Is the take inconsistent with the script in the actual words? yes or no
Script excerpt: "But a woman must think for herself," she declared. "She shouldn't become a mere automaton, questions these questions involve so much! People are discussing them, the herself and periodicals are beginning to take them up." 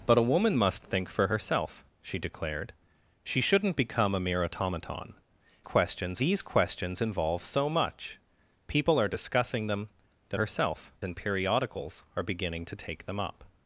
no